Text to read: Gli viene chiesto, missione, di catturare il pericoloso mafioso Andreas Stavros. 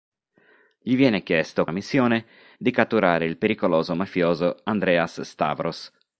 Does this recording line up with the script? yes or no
yes